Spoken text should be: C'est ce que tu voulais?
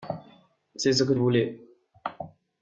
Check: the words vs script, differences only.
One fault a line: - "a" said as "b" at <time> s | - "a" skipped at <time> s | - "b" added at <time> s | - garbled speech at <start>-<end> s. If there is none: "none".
- "tu" skipped at 1.1 s